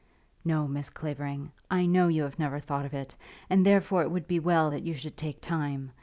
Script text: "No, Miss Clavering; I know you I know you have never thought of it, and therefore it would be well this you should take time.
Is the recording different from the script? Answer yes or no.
yes